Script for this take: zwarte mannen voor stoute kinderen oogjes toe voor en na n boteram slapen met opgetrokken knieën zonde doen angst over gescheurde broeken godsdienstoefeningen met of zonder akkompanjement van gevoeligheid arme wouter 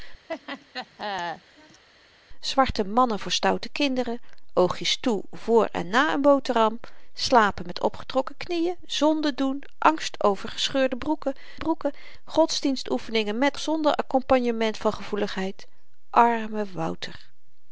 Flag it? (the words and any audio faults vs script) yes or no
yes